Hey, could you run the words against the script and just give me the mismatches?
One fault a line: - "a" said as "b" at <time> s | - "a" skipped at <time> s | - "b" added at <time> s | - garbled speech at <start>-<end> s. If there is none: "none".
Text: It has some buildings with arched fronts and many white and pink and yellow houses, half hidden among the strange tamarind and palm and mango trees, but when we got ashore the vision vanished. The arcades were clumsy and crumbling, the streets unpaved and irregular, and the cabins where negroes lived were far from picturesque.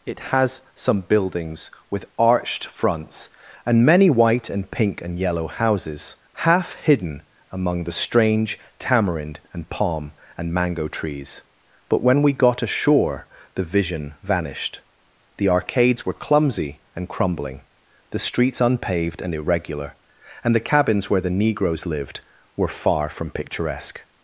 - "the" added at 21.2 s